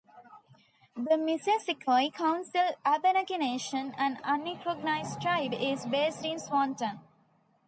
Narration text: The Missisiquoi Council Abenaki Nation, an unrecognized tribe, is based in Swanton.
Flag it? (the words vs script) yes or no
no